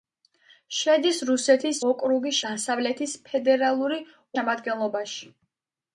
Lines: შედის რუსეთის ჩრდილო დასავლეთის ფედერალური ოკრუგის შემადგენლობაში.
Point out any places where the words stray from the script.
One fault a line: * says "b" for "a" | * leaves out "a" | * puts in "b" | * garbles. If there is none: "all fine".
* says "ოკრუგის" for "ჩრდილო"
* leaves out "ოკრუგის"